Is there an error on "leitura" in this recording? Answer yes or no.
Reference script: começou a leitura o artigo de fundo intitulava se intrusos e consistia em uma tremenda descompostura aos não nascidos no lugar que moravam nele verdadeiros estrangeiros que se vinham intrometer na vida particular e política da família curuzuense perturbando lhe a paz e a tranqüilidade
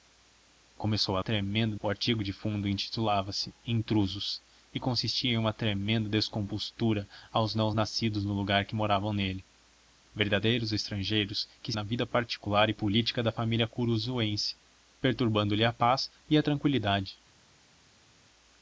yes